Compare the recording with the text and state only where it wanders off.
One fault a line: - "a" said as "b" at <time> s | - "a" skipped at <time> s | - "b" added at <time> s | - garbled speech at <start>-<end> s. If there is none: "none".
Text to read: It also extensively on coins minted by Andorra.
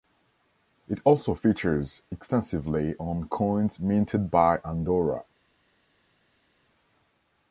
- "features" added at 1.4 s